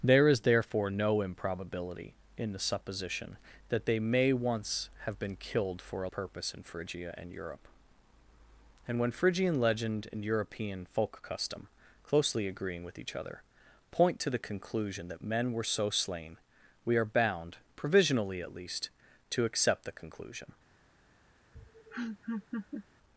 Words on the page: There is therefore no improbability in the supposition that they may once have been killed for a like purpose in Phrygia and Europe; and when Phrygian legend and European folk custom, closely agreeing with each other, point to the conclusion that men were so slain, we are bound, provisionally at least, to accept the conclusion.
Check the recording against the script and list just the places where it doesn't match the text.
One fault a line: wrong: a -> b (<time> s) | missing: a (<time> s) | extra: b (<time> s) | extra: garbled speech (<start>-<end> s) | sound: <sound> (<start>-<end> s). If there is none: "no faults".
missing: like (6.1 s)
sound: laugh (21.6-22.9 s)